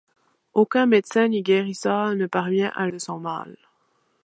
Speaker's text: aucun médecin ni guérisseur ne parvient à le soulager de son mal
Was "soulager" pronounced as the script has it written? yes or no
no